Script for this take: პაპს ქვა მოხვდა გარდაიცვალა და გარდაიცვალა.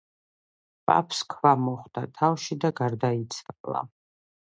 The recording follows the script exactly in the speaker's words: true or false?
false